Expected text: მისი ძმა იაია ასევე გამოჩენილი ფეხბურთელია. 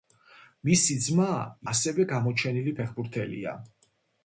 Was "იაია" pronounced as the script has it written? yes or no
no